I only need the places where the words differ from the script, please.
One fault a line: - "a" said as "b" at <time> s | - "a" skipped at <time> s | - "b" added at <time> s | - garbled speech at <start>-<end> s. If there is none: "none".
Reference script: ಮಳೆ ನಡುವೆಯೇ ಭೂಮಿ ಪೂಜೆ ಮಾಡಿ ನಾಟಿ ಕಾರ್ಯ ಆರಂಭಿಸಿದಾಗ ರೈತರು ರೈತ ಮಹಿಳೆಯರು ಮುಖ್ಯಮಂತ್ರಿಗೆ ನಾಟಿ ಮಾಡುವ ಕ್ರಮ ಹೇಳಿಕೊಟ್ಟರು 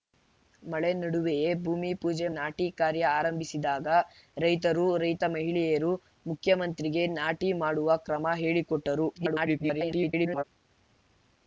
- "ಮಾಡಿ" skipped at 2.3 s
- garbled speech at 9.2-10.4 s